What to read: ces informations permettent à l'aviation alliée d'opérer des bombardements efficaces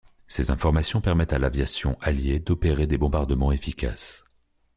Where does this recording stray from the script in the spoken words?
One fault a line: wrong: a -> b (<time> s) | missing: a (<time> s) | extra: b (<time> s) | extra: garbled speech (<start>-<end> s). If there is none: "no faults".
no faults